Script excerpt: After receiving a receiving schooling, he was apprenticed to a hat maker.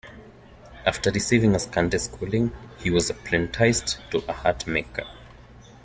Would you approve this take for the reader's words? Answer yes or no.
no